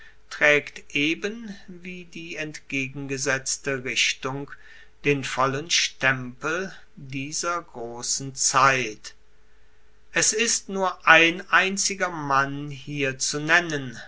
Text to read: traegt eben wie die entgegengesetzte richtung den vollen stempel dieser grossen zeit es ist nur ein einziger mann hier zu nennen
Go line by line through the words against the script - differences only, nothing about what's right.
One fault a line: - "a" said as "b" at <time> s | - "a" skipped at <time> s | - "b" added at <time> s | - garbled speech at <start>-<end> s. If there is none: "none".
none